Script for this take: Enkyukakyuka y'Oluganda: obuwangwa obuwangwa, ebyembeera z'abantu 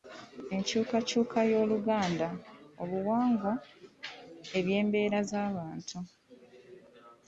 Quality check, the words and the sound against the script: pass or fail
fail